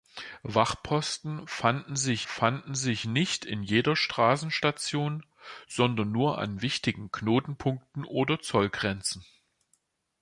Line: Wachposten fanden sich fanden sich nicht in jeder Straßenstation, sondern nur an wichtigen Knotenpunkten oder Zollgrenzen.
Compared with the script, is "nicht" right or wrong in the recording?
right